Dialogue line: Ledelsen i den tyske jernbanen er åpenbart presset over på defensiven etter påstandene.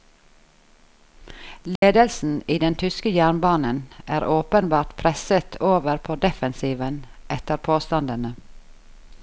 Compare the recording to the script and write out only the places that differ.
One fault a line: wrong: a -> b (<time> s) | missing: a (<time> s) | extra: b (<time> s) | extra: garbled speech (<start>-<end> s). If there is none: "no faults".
no faults